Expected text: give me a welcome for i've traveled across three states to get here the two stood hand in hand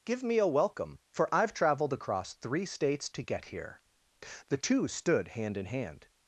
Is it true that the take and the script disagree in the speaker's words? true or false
false